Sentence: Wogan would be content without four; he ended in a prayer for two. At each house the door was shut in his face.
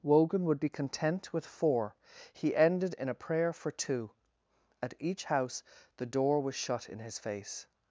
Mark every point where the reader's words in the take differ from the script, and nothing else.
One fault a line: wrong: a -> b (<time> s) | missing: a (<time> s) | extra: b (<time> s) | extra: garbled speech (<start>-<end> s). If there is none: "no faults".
wrong: without -> with (1.3 s)